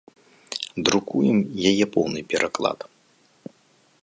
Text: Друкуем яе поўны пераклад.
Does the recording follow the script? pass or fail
pass